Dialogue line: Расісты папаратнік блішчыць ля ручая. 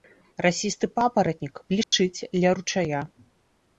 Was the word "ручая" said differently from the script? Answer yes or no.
no